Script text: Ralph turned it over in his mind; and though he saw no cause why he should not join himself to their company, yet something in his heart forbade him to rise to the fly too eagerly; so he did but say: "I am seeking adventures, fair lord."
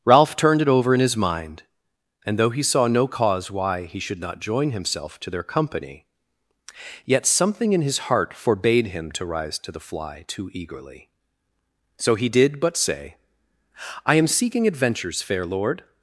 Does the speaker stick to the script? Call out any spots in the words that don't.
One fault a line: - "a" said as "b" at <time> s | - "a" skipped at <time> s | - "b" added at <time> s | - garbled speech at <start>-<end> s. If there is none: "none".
none